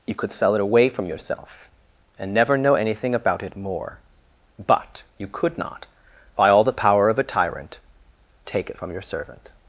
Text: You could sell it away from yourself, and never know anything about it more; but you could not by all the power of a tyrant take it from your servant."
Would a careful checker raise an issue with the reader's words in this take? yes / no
no